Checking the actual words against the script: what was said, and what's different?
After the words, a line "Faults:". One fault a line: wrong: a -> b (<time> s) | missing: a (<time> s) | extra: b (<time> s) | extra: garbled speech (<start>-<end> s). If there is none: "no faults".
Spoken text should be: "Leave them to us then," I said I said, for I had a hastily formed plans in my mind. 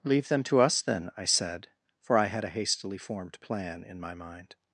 "Leave them to us then," I said, for I had a hastily formed plan in my mind.
Faults:
missing: I said (1.7 s)
wrong: plans -> plan (3.4 s)